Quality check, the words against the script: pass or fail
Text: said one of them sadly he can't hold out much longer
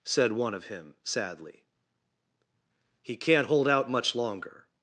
fail